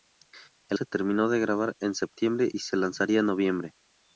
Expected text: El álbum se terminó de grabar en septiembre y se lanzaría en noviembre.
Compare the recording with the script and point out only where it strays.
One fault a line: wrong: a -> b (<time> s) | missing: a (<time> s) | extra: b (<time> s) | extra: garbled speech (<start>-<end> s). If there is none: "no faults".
missing: álbum (0.8 s)